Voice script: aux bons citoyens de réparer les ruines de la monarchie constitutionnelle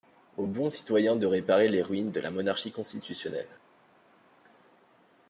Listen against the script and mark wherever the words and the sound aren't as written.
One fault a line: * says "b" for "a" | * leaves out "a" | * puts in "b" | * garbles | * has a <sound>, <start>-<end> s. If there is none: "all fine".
all fine